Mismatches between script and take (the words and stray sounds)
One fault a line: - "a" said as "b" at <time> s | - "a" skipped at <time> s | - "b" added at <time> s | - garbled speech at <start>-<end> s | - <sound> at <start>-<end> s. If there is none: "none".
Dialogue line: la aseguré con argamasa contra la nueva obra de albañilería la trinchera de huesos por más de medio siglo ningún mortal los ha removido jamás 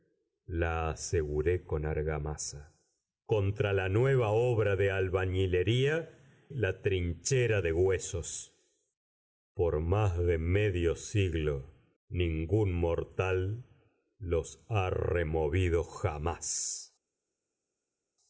none